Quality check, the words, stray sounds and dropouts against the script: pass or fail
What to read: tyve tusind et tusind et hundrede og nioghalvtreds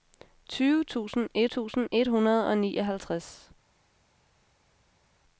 pass